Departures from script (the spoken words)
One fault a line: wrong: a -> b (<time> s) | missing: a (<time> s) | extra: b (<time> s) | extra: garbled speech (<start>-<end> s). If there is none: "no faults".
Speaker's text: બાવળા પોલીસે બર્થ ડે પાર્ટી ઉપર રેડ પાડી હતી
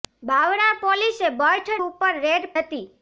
missing: ડે પાર્ટી (1.7 s)
missing: પાડી (2.5 s)